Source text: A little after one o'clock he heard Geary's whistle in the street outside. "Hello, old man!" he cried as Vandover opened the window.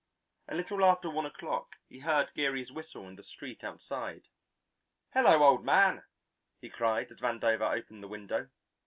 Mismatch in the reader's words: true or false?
false